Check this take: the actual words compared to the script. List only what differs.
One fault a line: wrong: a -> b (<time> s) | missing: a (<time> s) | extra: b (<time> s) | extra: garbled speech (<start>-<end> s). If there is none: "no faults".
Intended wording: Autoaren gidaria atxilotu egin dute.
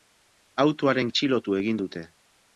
missing: gidaria (1.1 s)